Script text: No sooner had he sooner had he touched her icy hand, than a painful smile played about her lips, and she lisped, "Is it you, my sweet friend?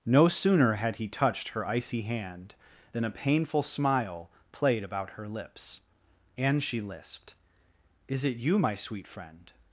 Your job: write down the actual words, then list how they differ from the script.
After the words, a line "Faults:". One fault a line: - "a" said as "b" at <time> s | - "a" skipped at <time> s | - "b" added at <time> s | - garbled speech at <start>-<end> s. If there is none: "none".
No sooner had he touched her icy hand, than a painful smile played about her lips, and she lisped, "Is it you, my sweet friend?
Faults:
- "sooner had he" skipped at 1.1 s